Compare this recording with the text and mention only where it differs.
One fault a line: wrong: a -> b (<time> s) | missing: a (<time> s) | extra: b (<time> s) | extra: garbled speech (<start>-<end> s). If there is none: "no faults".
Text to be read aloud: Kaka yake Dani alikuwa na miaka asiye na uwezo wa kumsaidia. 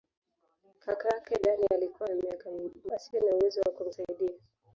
no faults